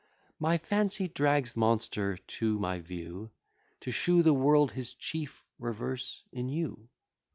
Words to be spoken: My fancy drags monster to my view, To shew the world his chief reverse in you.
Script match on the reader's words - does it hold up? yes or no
yes